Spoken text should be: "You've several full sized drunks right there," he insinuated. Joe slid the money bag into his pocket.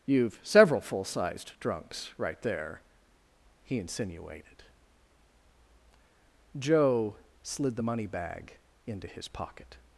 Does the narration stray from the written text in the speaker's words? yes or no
no